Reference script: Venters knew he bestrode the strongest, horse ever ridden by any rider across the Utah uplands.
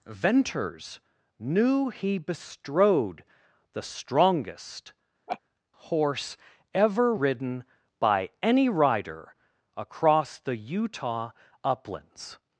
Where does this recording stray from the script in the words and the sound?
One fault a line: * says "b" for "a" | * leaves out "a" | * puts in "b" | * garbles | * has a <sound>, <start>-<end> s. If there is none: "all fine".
* has a laugh, 5.3-5.4 s